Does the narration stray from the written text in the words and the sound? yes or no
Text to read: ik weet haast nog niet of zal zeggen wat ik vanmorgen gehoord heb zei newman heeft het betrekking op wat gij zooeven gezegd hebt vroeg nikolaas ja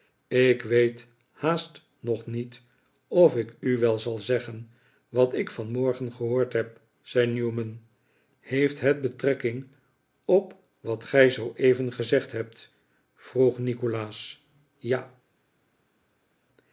yes